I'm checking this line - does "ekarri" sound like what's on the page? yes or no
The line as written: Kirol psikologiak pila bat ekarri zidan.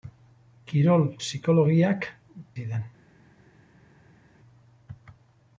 no